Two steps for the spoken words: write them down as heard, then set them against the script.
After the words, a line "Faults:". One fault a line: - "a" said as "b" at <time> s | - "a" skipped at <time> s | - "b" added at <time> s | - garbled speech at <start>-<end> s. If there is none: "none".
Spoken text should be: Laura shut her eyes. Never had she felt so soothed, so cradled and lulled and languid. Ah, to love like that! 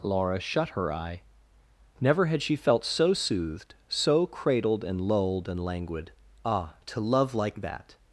Laura shut her eye. Never had she felt so soothed, so cradled and lulled and languid. Ah, to love like that!
Faults:
- "eyes" said as "eye" at 0.9 s